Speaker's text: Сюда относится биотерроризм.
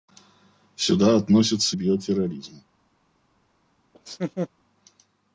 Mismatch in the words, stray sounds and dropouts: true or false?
true